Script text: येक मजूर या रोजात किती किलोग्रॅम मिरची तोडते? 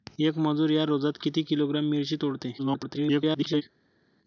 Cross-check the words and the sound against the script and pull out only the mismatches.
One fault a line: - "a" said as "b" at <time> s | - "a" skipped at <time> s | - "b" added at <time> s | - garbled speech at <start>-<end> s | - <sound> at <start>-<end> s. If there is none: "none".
- garbled speech at 2.6-3.6 s